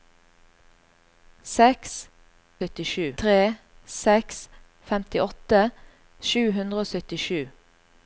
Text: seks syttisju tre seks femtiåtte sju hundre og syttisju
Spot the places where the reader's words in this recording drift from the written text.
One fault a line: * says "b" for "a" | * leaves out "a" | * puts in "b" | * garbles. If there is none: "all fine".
all fine